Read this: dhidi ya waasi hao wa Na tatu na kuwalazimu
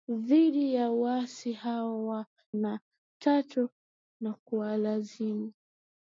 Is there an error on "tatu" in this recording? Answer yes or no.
no